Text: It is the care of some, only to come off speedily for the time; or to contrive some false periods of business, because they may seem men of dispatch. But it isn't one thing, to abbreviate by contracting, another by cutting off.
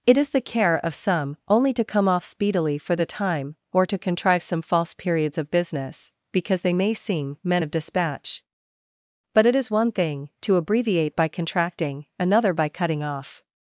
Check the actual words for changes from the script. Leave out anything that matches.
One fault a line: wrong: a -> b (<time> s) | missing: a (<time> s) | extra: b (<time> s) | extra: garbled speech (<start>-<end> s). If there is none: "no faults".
wrong: isn't -> is (9.6 s)